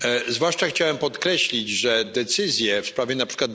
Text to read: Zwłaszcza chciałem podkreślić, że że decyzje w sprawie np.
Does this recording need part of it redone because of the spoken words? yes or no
yes